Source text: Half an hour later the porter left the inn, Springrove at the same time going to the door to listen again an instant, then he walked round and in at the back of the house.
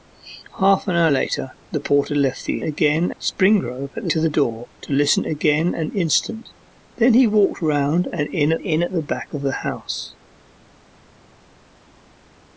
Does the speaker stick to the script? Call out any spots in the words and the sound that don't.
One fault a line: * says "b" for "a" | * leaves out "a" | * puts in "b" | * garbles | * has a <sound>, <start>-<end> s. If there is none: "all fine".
* says "again" for "inn"
* leaves out "same time going"
* puts in "in at"